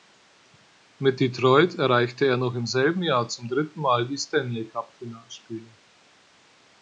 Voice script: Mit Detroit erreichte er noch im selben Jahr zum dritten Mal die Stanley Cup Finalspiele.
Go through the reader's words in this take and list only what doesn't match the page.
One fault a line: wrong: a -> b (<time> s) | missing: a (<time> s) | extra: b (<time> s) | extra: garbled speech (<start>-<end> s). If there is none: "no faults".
no faults